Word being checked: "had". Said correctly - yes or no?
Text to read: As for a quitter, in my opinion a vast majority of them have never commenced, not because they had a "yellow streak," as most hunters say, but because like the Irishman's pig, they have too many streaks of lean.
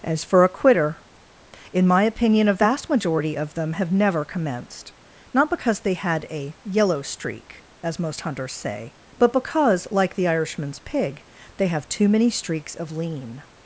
yes